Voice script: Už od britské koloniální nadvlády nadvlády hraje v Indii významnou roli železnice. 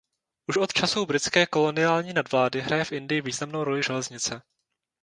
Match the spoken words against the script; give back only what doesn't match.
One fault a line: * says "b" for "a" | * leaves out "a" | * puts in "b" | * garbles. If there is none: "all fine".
* puts in "časů"
* leaves out "nadvlády"